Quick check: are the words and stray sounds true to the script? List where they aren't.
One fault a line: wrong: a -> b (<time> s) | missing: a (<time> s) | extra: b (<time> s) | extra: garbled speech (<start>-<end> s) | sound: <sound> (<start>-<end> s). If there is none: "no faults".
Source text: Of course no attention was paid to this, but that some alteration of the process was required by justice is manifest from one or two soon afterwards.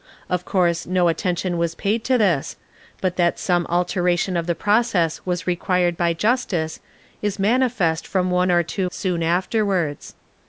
no faults